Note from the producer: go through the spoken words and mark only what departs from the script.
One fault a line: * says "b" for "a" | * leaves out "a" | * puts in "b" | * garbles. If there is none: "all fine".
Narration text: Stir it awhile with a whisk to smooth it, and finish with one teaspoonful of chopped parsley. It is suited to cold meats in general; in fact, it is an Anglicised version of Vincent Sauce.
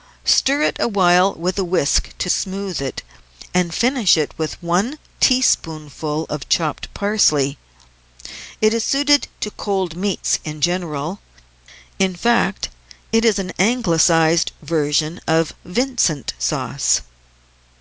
all fine